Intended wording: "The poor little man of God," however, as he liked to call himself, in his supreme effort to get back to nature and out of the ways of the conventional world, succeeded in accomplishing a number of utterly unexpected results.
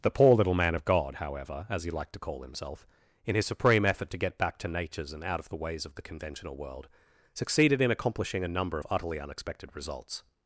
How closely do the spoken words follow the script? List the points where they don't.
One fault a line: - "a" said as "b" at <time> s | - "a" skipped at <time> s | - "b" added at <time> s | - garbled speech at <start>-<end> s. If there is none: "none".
- "nature" said as "natures" at 4.7 s